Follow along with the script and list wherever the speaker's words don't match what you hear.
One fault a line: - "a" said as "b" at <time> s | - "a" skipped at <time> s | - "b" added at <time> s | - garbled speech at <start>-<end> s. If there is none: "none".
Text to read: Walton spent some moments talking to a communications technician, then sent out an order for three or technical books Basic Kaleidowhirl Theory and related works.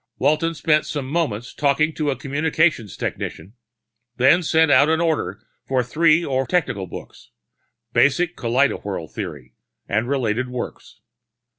none